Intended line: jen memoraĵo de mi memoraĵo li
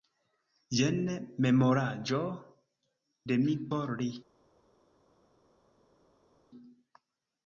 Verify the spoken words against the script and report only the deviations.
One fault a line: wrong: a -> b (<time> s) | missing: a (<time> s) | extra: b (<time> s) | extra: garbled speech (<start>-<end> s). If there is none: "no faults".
wrong: memoraĵo -> por (3.7 s)